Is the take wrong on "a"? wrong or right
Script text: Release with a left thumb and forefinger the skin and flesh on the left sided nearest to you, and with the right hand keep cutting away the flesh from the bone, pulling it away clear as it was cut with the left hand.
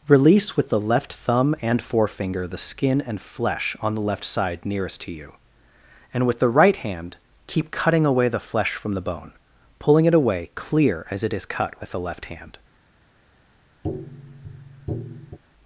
wrong